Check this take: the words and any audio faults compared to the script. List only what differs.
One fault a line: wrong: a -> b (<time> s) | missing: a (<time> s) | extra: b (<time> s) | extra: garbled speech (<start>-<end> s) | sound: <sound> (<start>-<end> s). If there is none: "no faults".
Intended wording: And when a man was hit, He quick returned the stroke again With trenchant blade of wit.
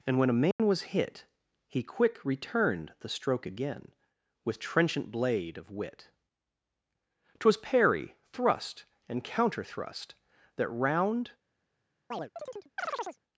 sound: dropout (0.5-0.6 s)
extra: Twas parry thrust and counter thrust That round (7.4 s)
sound: chirp (12.1-13.2 s)